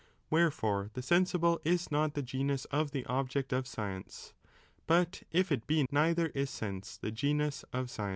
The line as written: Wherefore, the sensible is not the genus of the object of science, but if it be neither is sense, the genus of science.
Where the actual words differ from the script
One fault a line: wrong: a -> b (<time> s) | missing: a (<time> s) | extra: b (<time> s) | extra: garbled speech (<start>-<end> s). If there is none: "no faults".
no faults